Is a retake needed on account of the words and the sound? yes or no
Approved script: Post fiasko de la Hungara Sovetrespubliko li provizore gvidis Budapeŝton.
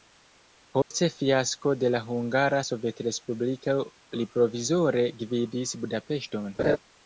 yes